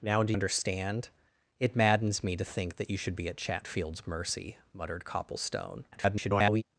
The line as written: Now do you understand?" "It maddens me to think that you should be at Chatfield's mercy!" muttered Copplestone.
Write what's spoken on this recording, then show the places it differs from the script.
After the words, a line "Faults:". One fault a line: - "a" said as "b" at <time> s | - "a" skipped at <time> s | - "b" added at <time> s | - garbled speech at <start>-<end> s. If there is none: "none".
Now do understand?" "It maddens me to think that you should be at Chatfield's mercy!" muttered Copplestone. [garbled]
Faults:
- "you" skipped at 0.3 s
- garbled speech at 5.9-6.6 s